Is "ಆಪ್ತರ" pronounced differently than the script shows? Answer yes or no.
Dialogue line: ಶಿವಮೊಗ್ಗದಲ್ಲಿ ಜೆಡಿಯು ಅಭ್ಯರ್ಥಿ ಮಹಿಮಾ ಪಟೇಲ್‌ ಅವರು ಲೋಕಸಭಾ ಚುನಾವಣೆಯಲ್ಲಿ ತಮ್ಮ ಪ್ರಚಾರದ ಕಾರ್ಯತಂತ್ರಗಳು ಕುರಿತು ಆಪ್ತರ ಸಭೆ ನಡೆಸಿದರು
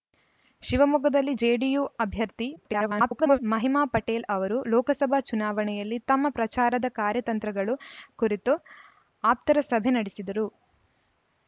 no